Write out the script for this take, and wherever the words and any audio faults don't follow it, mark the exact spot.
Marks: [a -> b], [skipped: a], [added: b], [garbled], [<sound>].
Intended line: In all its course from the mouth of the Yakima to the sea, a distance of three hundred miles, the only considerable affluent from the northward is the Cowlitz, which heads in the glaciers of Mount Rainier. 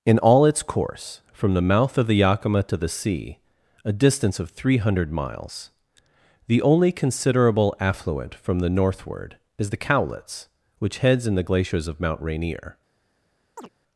In all its course from the mouth of the Yakima to the sea, a distance of three hundred miles, the only considerable affluent from the northward is the Cowlitz, which heads in the glaciers of Mount Rainier. [chirp]